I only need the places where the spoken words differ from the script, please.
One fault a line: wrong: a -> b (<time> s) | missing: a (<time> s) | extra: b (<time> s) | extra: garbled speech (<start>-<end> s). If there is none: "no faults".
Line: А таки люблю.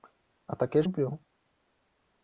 no faults